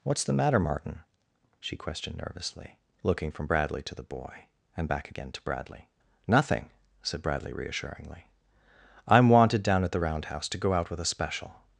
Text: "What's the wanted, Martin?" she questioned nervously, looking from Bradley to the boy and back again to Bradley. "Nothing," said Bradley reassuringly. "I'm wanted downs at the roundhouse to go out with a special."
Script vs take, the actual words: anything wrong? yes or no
yes